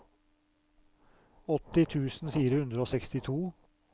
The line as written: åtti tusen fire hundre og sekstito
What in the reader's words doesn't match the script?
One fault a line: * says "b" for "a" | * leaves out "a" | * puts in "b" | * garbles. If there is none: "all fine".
all fine